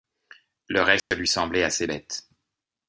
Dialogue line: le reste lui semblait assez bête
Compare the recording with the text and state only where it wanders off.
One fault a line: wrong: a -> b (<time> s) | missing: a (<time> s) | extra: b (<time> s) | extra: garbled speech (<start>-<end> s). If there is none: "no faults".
no faults